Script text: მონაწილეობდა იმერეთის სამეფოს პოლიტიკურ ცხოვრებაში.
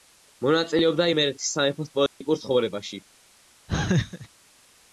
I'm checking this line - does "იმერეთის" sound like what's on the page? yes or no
yes